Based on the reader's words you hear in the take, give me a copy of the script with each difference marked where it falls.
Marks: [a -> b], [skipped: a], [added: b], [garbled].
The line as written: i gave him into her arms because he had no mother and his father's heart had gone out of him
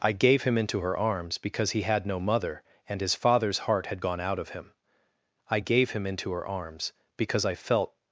i gave him into her arms because he had no mother and his father's heart had gone out of him [added: i gave him into her arms because i felt]